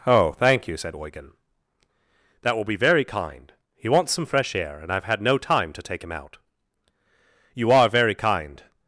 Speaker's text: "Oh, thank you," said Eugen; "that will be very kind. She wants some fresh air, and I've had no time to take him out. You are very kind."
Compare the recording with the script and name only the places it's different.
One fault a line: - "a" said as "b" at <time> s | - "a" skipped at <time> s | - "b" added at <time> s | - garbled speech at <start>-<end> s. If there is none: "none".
- "She" said as "He" at 3.7 s